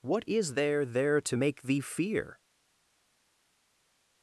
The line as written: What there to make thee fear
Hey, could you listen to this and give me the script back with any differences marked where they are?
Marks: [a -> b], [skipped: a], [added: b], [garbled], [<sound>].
What [added: is there] there to make thee fear